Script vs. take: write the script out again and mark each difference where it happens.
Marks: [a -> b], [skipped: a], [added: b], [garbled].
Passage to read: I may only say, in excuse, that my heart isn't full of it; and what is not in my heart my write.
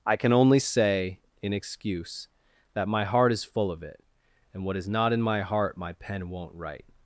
I [may -> can] only say, in excuse, that my heart [isn't -> is] full of it; and what is not in my heart my [added: pen won't] write.